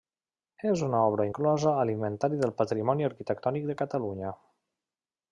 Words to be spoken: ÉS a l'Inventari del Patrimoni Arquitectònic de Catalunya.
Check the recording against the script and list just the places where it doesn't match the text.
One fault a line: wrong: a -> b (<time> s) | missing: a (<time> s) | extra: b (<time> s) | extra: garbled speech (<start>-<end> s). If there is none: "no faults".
extra: una obra inclosa (0.8 s)